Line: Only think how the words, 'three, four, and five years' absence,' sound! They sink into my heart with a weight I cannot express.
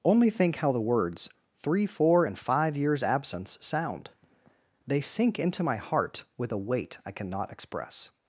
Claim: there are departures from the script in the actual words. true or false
false